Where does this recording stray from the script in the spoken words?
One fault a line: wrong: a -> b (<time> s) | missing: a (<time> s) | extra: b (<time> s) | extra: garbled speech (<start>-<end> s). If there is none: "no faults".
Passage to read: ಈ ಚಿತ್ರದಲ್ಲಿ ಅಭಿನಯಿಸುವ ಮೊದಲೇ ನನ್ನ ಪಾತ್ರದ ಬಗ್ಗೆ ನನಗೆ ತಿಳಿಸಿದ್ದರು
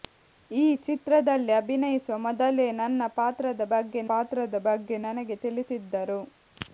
extra: ಪಾತ್ರದ ಬಗ್ಗೆ (4.1 s)